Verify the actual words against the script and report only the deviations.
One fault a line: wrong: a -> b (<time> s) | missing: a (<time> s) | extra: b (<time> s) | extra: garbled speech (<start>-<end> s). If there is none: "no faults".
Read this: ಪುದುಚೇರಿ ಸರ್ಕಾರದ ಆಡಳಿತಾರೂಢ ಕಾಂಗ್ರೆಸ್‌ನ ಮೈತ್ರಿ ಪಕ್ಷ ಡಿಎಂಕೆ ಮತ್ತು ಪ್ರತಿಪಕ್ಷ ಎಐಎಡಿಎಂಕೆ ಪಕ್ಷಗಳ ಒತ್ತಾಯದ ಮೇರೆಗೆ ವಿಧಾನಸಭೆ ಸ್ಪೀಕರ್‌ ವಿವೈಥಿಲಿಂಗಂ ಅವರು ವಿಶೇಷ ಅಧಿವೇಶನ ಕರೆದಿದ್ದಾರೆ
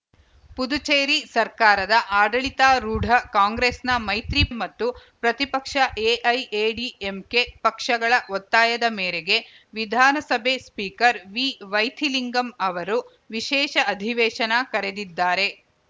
missing: ಪಕ್ಷ ಡಿಎಂಕೆ (4.4 s)